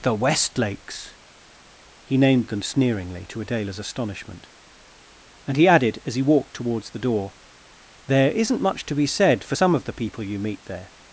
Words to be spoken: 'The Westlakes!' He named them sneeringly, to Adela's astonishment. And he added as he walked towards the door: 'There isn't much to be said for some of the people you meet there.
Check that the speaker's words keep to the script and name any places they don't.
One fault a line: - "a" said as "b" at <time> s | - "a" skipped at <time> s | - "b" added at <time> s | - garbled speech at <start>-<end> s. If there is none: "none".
none